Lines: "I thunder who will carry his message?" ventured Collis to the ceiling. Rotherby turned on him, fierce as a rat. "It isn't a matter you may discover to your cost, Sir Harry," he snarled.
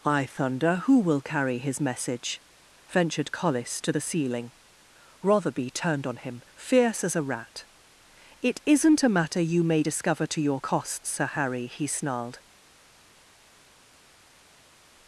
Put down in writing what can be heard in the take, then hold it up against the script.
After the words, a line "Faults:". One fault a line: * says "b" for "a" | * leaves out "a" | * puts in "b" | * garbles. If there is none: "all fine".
"I thunder who will carry his message?" ventured Collis to the ceiling. Rotherby turned on him, fierce as a rat. "It isn't a matter you may discover to your cost, Sir Harry," he snarled.
Faults:
all fine